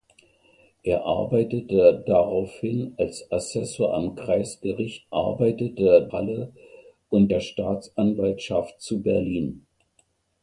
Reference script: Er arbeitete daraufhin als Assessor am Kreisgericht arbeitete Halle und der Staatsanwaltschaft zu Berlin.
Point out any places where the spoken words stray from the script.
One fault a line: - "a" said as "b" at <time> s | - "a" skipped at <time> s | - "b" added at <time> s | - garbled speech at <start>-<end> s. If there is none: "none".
none